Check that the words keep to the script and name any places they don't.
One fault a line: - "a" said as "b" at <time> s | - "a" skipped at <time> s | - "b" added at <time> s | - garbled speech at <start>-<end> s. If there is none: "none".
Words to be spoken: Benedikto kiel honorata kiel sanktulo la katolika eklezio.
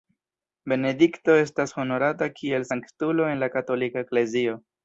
- "kiel" said as "estas" at 1.4 s
- "en" added at 3.3 s